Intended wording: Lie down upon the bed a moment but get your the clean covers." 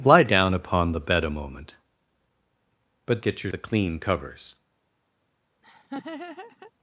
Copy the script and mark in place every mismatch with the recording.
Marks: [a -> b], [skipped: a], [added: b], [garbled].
Lie down upon the bed a moment but get your the clean covers."